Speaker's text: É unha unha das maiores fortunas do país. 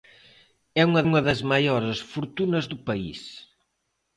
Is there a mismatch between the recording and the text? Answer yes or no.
no